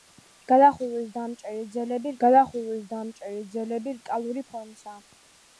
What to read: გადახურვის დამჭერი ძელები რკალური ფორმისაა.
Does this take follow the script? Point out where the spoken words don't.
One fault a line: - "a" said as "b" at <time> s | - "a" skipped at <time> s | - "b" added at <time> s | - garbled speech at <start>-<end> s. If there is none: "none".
- "გადახურვის დამჭერი ძელები" added at 2.2 s